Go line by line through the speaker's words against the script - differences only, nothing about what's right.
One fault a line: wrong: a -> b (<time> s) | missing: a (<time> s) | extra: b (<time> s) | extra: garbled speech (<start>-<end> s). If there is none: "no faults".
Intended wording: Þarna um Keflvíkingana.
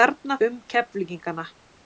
no faults